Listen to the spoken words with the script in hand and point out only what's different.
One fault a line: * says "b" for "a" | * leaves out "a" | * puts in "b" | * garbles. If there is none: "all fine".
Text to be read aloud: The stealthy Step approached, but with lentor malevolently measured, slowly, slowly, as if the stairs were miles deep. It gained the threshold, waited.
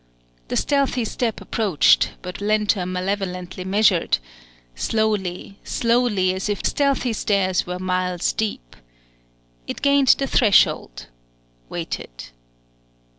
* leaves out "with"
* says "stealthy" for "the"